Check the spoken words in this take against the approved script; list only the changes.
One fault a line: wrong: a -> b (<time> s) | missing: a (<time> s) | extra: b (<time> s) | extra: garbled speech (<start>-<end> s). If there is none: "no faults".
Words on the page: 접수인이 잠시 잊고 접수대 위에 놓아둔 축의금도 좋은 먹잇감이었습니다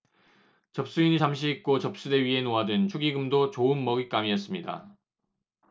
no faults